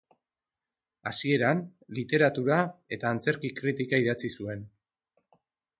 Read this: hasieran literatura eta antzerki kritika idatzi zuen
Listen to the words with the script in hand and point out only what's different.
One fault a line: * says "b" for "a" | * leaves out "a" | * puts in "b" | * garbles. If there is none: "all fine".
all fine